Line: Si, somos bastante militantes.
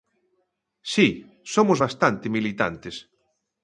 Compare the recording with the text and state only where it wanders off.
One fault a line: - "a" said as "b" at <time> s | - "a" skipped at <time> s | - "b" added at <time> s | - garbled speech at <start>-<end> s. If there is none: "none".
none